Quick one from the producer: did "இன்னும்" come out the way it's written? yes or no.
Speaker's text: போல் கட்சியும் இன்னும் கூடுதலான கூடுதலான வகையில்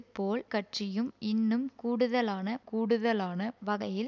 yes